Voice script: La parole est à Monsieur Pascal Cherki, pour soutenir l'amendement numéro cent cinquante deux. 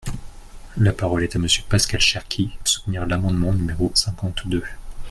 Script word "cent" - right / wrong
wrong